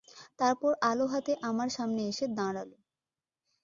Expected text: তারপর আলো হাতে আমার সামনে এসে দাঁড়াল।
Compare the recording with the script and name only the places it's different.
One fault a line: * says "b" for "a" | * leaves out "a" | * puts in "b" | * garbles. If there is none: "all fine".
all fine